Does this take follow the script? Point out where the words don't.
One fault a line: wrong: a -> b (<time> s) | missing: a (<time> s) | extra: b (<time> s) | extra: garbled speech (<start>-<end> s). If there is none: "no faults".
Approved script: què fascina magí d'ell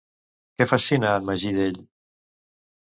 extra: en (1.2 s)